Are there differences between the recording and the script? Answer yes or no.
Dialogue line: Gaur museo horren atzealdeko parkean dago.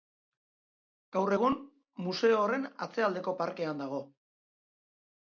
yes